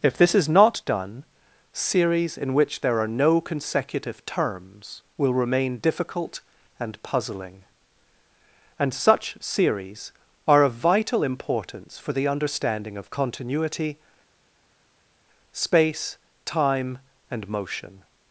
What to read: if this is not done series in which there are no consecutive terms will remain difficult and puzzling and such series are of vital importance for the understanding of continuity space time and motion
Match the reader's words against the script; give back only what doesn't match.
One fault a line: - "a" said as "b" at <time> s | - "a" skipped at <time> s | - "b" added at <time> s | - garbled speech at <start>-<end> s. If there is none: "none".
none